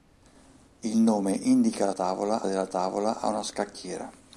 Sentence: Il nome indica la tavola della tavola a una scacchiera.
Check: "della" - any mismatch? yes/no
no